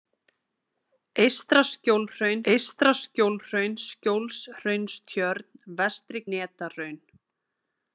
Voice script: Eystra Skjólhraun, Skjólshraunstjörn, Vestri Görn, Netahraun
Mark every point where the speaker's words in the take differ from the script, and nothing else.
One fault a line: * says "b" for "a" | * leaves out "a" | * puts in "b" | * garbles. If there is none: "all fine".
* puts in "eystra Skjólhraun"
* leaves out "Görn"